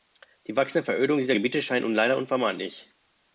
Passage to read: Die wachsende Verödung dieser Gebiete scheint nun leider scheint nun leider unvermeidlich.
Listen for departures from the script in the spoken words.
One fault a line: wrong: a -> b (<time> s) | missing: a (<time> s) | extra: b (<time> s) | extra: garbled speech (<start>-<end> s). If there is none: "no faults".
missing: scheint nun leider (2.2 s)